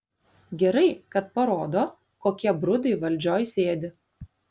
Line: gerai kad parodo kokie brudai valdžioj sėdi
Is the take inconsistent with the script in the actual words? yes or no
no